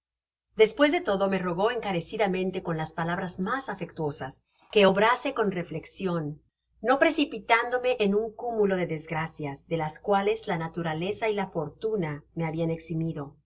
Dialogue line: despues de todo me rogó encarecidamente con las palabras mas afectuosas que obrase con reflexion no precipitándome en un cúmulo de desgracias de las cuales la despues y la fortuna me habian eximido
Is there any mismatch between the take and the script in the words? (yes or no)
yes